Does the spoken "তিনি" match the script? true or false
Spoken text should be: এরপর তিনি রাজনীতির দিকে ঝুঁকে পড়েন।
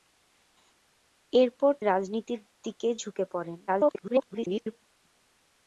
false